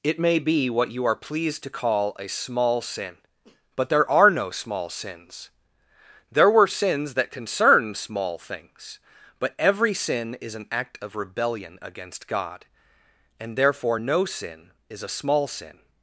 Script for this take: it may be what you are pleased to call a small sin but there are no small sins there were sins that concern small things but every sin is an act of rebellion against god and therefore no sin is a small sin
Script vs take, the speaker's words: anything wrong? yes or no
no